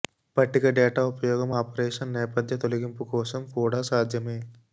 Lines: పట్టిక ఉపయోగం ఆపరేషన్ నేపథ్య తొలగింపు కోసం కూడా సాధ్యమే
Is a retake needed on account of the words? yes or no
yes